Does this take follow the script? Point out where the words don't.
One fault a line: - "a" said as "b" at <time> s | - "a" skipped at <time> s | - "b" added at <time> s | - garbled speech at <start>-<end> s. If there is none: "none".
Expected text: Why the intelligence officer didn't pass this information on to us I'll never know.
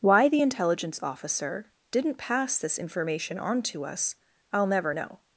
none